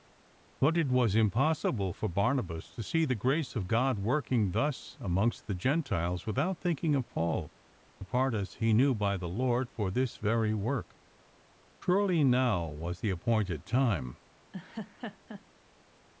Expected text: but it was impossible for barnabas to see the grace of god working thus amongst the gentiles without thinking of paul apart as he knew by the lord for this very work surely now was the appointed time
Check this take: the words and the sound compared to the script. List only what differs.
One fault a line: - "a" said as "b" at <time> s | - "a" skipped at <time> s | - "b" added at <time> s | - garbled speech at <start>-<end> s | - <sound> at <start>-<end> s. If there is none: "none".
- laugh at 14.5-15.4 s